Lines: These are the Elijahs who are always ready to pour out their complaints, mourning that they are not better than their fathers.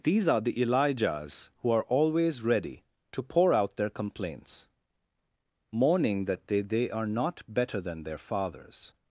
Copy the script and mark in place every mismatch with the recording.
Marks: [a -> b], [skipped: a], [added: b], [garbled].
These are the Elijahs who are always ready to pour out their complaints, mourning that they [added: they] are not better than their fathers.